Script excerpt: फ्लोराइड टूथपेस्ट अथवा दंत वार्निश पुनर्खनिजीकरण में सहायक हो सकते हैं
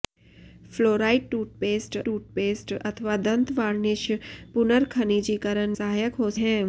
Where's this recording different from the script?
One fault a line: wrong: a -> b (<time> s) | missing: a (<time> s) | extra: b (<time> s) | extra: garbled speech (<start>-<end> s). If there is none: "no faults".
extra: टूथपेस्ट (2.0 s)
missing: में (5.8 s)
missing: सकते (6.3 s)